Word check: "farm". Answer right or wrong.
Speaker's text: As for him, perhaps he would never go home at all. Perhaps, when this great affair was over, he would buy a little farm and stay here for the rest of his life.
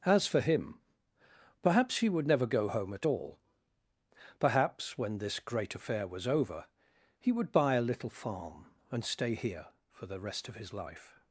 right